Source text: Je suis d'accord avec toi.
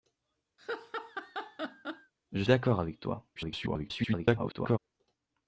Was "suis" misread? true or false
true